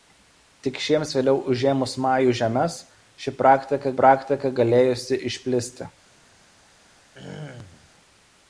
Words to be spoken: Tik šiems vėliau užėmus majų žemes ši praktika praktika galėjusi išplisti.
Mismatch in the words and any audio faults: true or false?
true